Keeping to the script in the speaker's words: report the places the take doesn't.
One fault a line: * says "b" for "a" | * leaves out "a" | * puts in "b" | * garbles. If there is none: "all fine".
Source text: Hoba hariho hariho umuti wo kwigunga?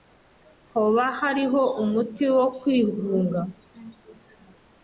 * leaves out "hariho"